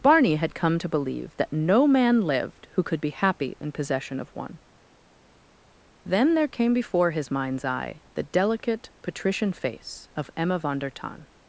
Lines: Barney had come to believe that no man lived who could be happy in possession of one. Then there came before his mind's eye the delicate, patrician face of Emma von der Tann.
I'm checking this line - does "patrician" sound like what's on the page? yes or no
yes